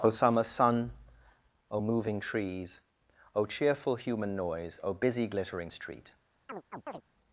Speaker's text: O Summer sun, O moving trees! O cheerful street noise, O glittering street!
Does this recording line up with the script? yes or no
no